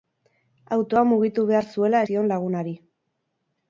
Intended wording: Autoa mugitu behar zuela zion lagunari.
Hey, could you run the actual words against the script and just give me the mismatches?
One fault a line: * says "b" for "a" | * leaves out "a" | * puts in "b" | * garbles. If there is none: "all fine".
all fine